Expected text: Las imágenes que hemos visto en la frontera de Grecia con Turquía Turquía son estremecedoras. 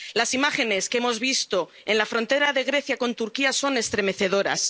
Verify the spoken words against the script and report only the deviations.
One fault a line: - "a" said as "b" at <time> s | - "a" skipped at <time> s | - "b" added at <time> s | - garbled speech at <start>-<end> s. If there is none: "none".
- "Turquía" skipped at 3.5 s